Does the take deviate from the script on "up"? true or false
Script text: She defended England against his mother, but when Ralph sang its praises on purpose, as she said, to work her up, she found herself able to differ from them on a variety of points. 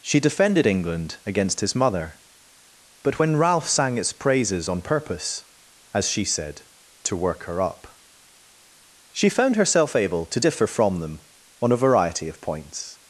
false